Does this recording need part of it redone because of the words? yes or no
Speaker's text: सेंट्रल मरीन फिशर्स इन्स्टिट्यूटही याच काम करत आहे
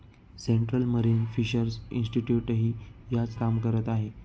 no